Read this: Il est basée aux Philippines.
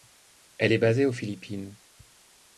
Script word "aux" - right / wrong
right